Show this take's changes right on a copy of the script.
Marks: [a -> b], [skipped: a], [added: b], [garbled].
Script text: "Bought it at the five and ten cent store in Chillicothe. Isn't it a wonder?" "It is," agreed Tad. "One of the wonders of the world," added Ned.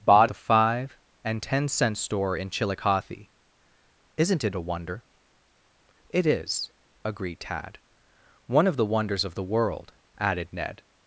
"Bought [skipped: it at] the five and ten cent store in Chillicothe. Isn't it a wonder?" "It is," agreed Tad. "One of the wonders of the world," added Ned.